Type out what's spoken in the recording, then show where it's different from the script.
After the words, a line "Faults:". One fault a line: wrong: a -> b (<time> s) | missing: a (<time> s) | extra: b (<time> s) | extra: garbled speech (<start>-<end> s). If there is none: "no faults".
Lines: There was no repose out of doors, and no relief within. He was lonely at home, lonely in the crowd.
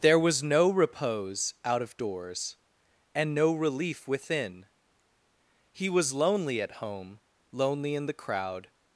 There was no repose out of doors, and no relief within. He was lonely at home, lonely in the crowd.
Faults:
no faults